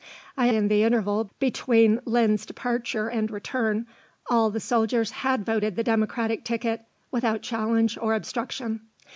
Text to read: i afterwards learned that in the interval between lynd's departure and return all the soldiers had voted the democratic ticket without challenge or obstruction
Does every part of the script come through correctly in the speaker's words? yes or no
no